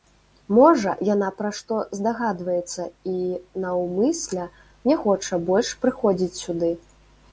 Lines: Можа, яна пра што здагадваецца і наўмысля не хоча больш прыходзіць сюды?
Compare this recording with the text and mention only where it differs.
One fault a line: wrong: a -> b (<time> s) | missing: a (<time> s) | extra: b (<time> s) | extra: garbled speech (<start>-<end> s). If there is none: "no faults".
no faults